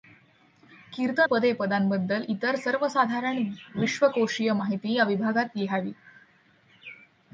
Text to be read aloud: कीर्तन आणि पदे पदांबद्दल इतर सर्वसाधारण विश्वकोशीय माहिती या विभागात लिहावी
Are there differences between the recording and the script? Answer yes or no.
yes